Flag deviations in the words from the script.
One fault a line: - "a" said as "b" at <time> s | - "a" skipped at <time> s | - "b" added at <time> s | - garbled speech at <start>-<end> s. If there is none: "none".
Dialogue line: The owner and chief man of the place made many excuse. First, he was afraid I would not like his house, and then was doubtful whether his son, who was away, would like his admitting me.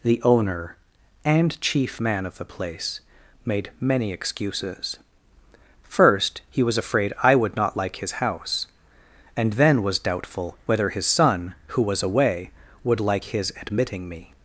- "excuse" said as "excuses" at 4.1 s